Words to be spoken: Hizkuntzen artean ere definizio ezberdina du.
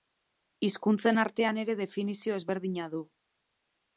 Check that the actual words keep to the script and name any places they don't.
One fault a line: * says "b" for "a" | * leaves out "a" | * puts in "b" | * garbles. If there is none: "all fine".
all fine